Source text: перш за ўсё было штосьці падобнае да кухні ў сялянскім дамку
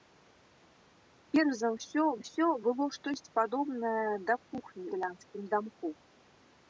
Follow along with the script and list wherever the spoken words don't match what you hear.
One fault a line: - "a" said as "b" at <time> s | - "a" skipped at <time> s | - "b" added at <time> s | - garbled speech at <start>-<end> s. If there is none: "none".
- "ўсё" added at 2.2 s
- "ў" skipped at 4.9 s